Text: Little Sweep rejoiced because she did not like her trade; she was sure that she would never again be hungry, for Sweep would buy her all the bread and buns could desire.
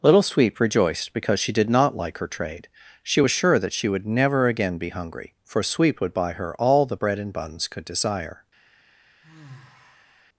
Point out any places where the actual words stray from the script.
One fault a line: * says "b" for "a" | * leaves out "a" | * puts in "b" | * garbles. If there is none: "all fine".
all fine